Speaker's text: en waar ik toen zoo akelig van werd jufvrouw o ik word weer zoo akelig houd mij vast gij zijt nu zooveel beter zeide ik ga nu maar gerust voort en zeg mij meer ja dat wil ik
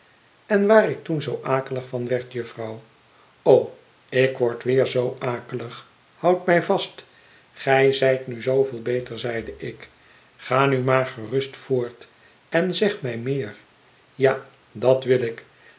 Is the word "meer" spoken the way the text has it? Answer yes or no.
yes